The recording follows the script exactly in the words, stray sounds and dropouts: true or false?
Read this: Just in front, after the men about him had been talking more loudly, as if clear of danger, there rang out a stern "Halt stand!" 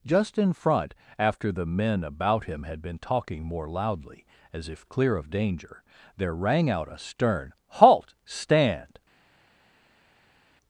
true